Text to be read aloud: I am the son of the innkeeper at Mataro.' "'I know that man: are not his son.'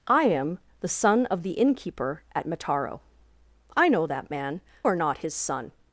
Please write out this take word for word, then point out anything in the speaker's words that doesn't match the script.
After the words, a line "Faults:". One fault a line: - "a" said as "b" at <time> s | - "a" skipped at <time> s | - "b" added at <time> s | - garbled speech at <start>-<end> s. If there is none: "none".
I am the son of the innkeeper at Mataro.' "'I know that man: are not his son.'
Faults:
none